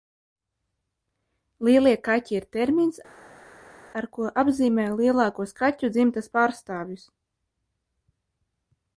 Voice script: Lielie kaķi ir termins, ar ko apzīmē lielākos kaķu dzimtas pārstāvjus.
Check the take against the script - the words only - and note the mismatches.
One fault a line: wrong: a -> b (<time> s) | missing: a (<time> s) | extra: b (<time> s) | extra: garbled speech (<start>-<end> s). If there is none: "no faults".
no faults